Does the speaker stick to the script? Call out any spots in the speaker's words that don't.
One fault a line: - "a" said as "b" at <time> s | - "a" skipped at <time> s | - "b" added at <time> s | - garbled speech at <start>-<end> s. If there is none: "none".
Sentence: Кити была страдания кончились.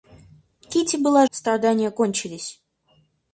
none